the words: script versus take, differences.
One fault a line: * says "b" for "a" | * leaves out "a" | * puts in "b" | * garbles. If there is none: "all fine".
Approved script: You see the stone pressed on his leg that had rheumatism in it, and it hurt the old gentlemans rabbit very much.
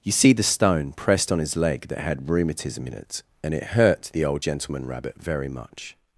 * says "gentleman" for "gentlemans"